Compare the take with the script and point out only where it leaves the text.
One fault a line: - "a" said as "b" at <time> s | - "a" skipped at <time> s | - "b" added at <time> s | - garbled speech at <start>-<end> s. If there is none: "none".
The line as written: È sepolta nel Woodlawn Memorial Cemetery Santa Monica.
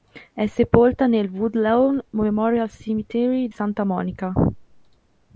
none